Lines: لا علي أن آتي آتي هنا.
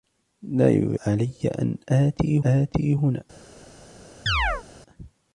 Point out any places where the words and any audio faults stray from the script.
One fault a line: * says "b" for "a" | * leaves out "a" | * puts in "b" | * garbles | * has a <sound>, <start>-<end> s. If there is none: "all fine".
* has a chirp, 4.3-4.6 s